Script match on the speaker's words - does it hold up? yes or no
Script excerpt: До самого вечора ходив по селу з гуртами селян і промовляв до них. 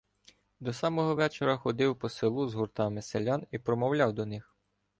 yes